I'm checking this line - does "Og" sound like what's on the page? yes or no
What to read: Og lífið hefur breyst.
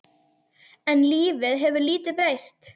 no